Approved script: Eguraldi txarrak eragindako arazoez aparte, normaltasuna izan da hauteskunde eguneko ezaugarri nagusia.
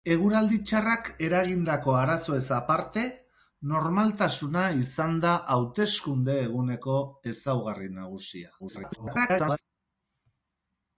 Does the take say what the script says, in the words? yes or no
no